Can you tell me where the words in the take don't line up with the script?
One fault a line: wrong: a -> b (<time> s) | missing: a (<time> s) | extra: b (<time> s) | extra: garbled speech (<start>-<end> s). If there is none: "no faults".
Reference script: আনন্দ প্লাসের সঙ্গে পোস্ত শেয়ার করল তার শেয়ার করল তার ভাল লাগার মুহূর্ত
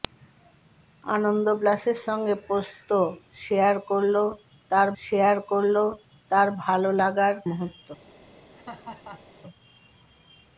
no faults